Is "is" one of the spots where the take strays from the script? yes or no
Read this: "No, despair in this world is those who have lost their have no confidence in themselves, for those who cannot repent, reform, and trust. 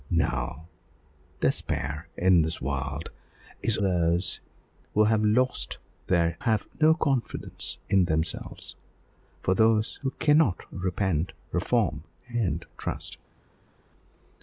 no